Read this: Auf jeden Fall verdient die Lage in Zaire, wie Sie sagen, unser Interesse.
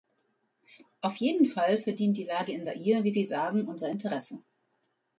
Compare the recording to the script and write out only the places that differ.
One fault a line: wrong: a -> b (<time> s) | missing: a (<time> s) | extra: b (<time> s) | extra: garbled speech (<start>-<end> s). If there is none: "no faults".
no faults